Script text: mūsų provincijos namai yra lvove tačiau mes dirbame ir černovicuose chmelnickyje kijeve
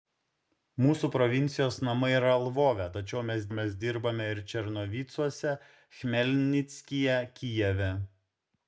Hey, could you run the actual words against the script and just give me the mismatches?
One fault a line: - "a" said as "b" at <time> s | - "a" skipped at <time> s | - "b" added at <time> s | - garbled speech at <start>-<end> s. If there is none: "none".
- "mes" added at 3.6 s